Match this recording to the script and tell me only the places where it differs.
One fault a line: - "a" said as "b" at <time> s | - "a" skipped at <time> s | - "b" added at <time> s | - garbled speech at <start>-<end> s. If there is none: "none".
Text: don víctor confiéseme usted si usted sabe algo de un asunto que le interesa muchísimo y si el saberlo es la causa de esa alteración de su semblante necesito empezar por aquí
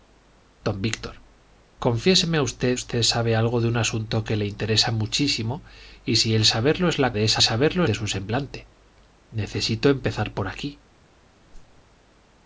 - "si" skipped at 2.8 s
- "causa" skipped at 7.1 s
- "alteración" said as "saberlo" at 7.4 s